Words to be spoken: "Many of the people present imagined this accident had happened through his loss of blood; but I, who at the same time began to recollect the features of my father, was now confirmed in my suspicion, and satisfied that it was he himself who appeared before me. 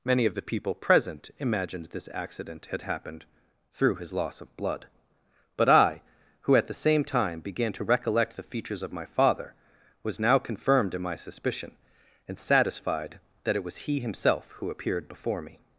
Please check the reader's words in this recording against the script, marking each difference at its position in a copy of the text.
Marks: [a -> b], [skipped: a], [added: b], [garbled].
"Many of the people present imagined this accident had happened through his loss of blood; but I, who at the same time began to recollect the features of my father, was now confirmed in my suspicion, and satisfied that it was he himself who appeared before me.